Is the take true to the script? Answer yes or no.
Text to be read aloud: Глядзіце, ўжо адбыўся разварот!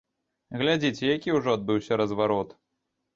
no